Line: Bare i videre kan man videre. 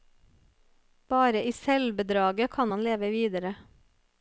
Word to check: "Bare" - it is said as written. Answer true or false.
true